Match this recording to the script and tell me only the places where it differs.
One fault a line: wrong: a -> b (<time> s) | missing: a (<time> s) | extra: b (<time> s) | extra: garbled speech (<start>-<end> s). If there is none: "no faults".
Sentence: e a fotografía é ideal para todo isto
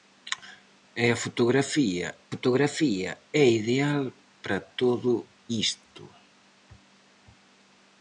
extra: fotografía (2.3 s)